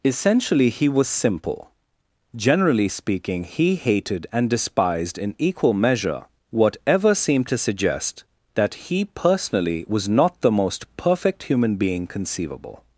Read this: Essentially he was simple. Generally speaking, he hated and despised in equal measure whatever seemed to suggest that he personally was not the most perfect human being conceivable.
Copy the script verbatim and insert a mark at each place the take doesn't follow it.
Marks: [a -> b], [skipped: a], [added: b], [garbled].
Essentially he was simple. Generally speaking, he hated and despised in equal measure whatever seemed to suggest that he personally was not the most perfect human being conceivable.